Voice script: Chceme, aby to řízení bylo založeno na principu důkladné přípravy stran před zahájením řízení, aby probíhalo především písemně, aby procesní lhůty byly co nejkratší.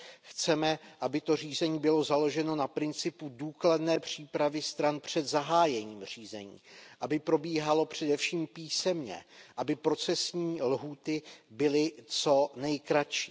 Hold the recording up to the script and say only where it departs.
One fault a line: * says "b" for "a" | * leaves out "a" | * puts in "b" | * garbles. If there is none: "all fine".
all fine